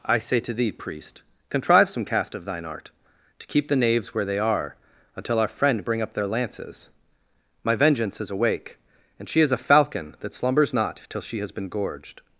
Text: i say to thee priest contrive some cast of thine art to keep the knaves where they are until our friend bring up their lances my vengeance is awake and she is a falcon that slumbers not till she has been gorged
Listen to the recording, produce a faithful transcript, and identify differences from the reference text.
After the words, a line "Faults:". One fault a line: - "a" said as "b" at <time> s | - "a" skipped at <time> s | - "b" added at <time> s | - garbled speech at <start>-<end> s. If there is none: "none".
i say to thee priest contrive some cast of thine art to keep the knaves where they are until our friend bring up their lances my vengeance is awake and she is a falcon that slumbers not till she has been gorged
Faults:
none